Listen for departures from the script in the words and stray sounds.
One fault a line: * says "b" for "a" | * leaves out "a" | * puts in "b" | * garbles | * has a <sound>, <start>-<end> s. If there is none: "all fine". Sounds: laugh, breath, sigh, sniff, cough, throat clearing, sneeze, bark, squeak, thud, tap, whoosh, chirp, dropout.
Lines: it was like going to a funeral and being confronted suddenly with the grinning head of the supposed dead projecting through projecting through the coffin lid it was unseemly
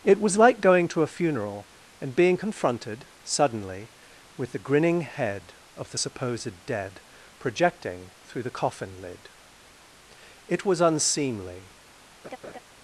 * leaves out "projecting through"
* has a laugh, 12.2-12.6 s